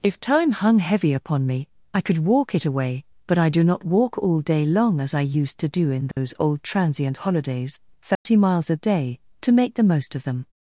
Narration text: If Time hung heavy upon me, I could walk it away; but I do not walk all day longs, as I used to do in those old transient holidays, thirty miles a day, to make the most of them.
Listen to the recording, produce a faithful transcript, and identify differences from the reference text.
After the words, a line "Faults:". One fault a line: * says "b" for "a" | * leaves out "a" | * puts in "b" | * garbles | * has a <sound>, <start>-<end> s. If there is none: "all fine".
If Time hung heavy upon me, I could walk it away; but I do not walk all day long, as I used to do in those old transient holidays, thirty miles a day, to make the most of them.
Faults:
* says "long" for "longs"
* has a dropout, 6.1-6.2 s
* has a dropout, 8.1-8.3 s